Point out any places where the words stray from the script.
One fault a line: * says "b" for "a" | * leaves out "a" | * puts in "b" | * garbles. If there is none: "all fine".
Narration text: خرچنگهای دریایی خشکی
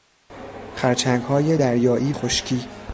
all fine